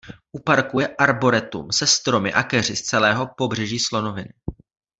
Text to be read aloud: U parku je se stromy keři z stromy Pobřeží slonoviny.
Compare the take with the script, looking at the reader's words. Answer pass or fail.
fail